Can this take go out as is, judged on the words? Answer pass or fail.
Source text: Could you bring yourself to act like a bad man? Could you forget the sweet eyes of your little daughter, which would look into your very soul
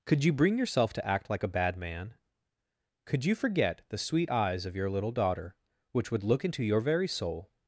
pass